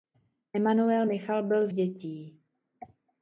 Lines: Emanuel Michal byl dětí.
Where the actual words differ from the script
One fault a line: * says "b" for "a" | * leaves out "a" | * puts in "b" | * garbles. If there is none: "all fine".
all fine